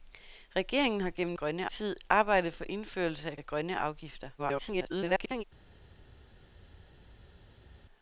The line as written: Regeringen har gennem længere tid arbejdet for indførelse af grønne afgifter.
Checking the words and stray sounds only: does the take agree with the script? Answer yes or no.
no